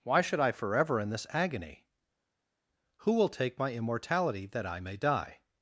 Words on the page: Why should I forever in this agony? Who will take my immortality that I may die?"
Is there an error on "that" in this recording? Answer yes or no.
no